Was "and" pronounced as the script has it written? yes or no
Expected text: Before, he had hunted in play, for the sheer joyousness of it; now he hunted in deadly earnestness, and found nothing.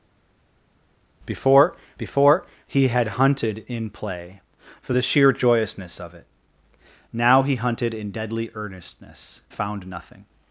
no